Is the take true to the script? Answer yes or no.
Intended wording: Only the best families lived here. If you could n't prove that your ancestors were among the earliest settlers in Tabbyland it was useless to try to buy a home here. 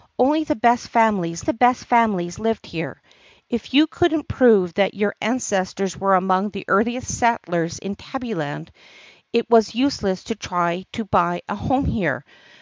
no